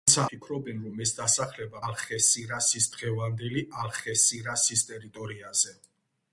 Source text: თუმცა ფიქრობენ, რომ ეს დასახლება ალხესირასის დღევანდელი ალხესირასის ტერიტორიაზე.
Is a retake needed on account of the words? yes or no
no